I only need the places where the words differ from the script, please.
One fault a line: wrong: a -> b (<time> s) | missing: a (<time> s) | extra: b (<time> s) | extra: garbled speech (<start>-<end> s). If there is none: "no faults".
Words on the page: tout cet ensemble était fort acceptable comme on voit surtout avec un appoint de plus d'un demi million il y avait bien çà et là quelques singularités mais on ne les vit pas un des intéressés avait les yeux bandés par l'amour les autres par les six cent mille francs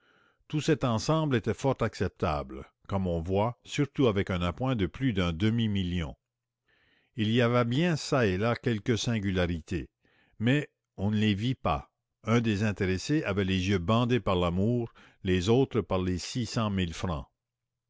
no faults